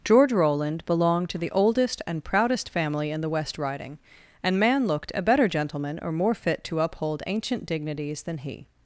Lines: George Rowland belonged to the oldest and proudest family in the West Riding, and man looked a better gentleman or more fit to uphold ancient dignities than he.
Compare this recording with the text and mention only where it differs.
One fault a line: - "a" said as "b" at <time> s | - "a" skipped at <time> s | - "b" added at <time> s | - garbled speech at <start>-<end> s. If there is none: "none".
none